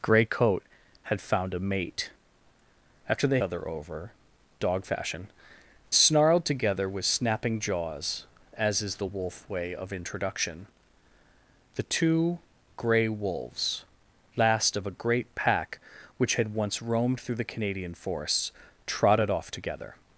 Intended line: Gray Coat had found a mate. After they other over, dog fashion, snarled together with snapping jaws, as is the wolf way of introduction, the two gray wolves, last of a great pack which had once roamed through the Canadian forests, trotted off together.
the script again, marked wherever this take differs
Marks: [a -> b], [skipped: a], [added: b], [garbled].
Gray Coat had found a mate. After they other over, dog fashion, snarled together with snapping jaws, as is the wolf way of introduction, the two gray wolves, last of a great pack which had once roamed through the Canadian forests, trotted off together.